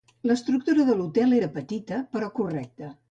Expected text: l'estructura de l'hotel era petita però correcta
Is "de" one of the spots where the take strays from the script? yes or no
no